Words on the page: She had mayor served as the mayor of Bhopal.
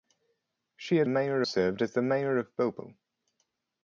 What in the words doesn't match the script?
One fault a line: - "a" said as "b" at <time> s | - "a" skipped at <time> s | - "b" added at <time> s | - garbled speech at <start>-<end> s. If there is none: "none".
none